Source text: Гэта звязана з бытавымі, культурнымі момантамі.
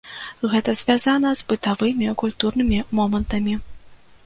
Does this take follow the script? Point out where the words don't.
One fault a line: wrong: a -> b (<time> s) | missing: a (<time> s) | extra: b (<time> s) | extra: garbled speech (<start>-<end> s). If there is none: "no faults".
no faults